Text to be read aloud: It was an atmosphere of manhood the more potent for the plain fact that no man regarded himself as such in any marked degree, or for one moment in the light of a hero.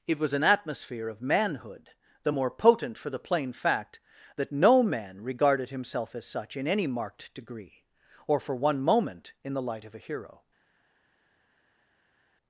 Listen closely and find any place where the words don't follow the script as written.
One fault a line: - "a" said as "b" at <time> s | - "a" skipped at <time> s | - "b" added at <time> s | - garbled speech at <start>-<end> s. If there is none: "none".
none